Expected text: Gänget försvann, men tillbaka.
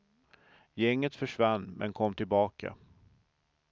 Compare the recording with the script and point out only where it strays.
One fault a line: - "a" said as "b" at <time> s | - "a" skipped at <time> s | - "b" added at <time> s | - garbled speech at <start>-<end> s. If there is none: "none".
- "kom" added at 1.9 s